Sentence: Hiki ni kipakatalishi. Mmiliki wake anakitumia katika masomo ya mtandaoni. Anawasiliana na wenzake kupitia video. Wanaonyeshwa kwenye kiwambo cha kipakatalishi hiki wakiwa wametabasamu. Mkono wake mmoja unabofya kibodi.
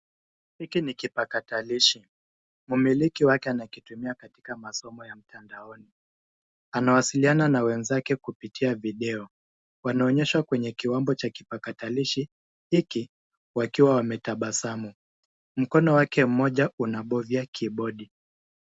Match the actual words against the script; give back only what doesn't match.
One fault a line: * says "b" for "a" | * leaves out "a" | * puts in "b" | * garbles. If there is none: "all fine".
all fine